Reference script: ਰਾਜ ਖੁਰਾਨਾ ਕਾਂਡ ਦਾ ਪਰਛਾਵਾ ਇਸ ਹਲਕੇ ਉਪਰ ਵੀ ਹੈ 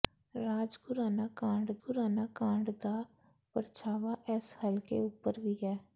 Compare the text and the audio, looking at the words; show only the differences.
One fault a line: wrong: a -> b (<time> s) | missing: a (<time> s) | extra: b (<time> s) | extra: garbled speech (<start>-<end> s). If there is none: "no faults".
extra: ਖੁਰਾਨਾ ਕਾਂਡ (1.8 s)